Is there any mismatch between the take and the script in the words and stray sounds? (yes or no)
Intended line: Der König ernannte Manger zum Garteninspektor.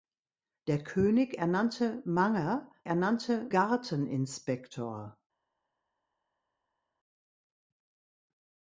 yes